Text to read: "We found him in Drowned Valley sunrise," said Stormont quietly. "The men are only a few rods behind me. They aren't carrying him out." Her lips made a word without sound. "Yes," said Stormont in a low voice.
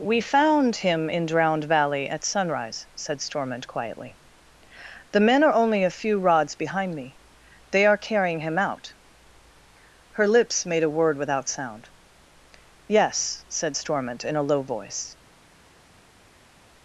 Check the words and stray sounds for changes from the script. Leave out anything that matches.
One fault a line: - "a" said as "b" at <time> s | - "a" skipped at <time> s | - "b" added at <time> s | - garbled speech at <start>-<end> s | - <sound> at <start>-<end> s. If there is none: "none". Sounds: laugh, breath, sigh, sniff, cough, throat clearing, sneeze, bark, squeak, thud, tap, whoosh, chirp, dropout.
- "at" added at 2.1 s
- "aren't" said as "are" at 7.8 s